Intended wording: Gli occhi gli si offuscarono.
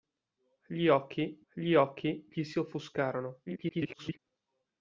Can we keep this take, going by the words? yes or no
no